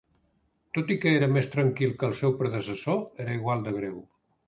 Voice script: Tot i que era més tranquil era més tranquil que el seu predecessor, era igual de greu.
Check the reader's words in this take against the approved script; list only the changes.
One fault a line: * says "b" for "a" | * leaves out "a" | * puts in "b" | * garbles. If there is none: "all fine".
* leaves out "era més tranquil"